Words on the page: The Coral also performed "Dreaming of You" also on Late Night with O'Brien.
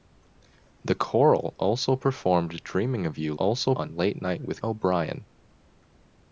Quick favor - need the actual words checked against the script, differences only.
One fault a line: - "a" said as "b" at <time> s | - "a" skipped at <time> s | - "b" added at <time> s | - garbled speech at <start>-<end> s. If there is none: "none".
none